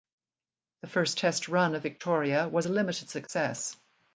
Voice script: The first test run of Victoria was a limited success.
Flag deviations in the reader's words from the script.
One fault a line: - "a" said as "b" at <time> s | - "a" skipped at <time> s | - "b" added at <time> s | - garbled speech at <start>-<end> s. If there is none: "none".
none